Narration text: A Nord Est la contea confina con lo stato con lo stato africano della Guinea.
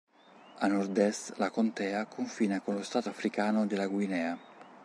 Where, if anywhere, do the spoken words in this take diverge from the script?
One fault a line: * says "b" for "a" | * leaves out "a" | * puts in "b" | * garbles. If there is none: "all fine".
* leaves out "con lo stato"